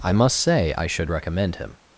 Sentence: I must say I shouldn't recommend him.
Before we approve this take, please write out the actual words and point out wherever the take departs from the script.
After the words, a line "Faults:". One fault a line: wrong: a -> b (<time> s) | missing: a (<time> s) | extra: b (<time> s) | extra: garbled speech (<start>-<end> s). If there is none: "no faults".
I must say I should recommend him.
Faults:
wrong: shouldn't -> should (0.9 s)